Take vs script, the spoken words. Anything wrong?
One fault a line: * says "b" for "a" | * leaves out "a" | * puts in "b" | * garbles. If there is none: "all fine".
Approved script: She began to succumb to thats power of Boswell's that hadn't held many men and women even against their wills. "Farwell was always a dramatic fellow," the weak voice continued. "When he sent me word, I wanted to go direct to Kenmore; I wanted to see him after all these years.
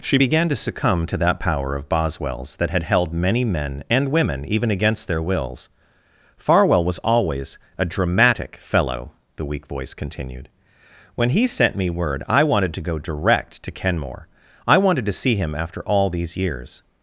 * says "that" for "thats"
* says "had" for "hadn't"